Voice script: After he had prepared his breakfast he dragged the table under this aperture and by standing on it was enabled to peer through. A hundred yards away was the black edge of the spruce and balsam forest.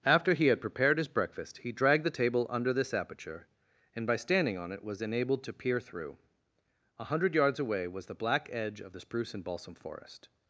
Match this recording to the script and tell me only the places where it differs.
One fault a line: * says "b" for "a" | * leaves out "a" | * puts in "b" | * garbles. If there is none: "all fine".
all fine